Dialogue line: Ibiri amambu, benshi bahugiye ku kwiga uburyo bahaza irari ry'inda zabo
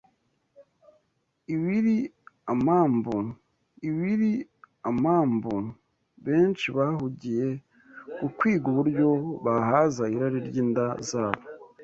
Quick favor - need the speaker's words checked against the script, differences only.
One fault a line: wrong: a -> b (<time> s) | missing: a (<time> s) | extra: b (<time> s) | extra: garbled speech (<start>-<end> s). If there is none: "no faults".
extra: ibiri amambu (3.9 s)